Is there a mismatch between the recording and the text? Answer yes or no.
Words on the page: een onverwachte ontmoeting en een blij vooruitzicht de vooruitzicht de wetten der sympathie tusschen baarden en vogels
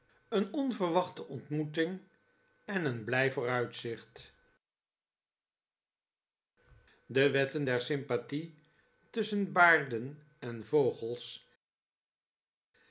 yes